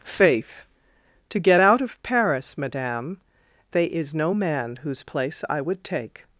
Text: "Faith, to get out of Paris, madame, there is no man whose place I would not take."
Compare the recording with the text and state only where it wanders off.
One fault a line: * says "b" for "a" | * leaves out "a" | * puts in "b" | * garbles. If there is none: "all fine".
* says "they" for "there"
* leaves out "not"